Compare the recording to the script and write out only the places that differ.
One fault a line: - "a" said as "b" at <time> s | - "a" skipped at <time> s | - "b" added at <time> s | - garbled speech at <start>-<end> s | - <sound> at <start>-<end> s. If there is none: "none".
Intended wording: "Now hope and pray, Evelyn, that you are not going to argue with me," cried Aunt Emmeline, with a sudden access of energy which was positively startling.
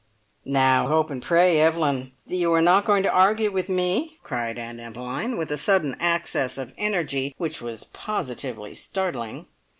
none